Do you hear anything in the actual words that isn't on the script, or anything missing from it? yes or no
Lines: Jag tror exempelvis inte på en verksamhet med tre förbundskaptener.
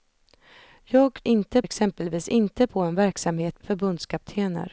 yes